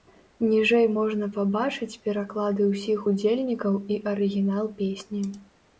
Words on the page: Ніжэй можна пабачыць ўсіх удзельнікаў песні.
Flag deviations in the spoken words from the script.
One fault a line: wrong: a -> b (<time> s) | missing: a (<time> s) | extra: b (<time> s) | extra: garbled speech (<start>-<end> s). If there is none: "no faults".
extra: пераклады (2.1 s)
extra: і арыгінал (3.9 s)